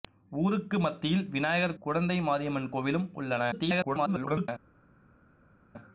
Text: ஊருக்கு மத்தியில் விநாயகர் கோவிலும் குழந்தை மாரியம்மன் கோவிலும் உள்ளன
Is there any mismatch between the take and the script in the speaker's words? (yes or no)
yes